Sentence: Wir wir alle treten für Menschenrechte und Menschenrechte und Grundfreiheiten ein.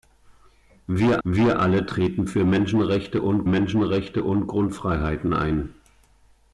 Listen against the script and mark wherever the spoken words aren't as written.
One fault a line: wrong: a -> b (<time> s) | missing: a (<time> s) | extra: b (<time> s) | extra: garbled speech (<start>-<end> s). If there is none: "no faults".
no faults